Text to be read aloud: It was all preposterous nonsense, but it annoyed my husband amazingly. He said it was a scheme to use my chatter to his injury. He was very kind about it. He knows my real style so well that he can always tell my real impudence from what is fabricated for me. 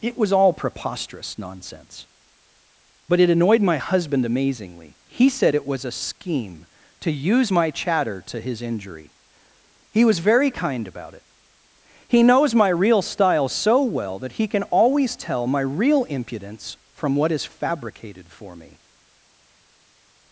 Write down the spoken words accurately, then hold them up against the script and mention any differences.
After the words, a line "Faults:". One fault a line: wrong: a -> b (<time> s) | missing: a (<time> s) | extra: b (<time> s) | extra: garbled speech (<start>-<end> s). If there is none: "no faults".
It was all preposterous nonsense, but it annoyed my husband amazingly. He said it was a scheme to use my chatter to his injury. He was very kind about it. He knows my real style so well that he can always tell my real impudence from what is fabricated for me.
Faults:
no faults